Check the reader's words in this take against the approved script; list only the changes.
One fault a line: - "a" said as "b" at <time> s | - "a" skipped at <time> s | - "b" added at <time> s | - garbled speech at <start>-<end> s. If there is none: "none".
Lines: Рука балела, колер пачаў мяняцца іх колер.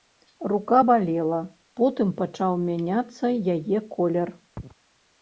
- "колер" said as "потым" at 1.8 s
- "іх" said as "яе" at 3.6 s